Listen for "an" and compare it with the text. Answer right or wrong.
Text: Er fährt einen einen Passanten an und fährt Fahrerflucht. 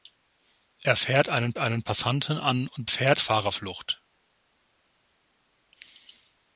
right